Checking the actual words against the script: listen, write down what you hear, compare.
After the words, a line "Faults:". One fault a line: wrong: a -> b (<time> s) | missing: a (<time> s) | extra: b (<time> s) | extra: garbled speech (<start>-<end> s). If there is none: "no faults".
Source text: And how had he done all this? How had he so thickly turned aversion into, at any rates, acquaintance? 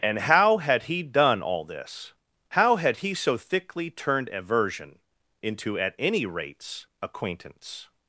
And how had he done all this? How had he so thickly turned aversion into, at any rates, acquaintance?
Faults:
no faults